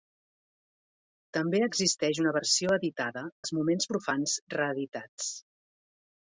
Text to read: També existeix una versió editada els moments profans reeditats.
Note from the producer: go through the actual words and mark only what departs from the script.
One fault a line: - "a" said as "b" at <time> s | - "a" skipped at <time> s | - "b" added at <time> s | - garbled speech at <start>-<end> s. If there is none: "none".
none